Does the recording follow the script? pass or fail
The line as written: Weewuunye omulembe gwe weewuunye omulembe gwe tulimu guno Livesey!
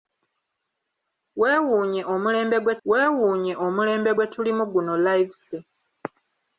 pass